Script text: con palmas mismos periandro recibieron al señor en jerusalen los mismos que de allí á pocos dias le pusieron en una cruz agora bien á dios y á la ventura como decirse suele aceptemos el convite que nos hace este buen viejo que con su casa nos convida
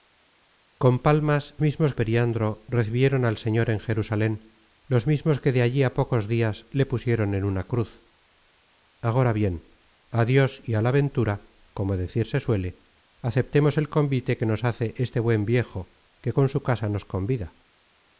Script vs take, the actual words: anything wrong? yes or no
no